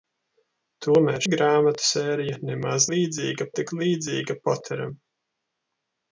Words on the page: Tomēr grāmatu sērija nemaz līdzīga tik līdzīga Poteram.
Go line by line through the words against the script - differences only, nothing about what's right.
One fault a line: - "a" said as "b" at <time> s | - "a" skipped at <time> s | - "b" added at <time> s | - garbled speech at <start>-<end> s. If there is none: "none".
none